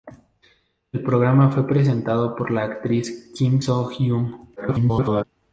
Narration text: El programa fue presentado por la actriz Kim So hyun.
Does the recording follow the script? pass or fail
fail